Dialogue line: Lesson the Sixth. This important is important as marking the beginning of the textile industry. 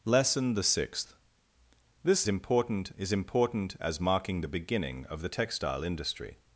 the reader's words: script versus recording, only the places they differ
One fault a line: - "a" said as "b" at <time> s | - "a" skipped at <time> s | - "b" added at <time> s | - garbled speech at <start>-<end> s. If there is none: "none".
none